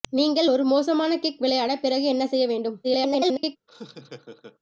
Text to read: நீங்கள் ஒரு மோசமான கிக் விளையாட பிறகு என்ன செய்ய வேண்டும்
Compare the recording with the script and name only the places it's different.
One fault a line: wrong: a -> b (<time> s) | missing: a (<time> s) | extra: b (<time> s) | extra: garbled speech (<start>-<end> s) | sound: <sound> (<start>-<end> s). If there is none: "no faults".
extra: garbled speech (2.8-3.6 s)
sound: laugh (3.7-4.6 s)